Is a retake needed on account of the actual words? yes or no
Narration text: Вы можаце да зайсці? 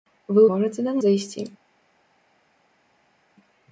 no